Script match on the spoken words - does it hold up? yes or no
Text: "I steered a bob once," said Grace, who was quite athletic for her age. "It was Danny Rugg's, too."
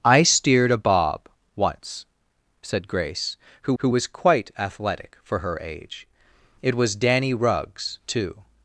no